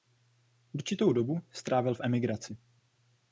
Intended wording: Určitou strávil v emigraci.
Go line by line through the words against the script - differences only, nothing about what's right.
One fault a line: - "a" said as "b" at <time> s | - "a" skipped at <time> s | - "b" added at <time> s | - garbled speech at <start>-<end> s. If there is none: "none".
- "dobu" added at 1.1 s